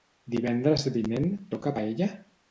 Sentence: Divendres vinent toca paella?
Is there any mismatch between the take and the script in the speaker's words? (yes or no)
no